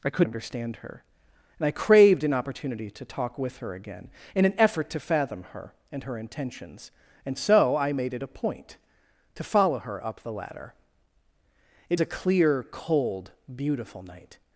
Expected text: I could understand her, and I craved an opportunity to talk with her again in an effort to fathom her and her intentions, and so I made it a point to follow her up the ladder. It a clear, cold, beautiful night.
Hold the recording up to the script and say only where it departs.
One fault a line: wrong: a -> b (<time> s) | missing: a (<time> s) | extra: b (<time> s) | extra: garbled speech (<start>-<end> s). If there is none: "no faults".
no faults